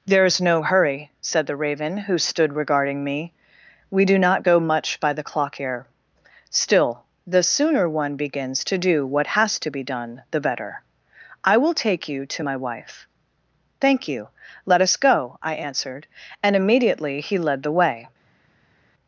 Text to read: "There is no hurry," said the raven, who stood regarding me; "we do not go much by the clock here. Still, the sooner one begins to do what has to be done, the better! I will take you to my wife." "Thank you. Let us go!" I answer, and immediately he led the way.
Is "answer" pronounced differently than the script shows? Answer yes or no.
yes